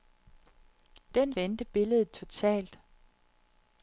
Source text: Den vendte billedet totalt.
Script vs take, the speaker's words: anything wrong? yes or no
no